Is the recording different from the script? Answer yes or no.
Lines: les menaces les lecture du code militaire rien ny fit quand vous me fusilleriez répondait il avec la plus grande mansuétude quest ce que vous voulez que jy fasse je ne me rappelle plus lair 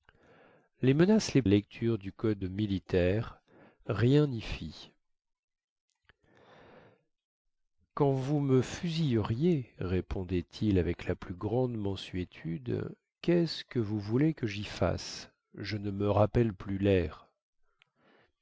no